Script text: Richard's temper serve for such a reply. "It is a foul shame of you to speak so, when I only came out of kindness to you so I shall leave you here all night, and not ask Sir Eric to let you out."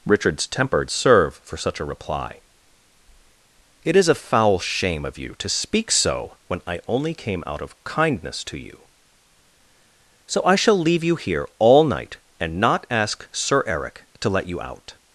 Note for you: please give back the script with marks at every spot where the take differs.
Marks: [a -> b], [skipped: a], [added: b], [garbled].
Richard's temper serve for such a reply. "It is a foul shame of you to speak so, when I only came out of kindness to you so I shall leave you here all night, and not ask Sir Eric to let you out."